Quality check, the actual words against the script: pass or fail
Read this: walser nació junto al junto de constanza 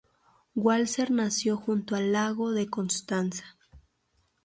fail